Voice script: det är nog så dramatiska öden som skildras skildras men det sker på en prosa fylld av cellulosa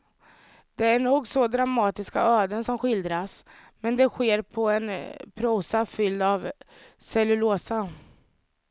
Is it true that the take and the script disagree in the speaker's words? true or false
true